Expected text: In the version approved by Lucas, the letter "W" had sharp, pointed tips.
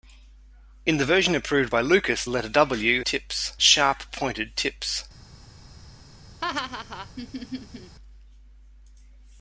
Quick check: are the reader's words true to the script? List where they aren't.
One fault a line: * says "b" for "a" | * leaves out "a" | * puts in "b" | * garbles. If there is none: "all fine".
* leaves out "the"
* says "tips" for "had"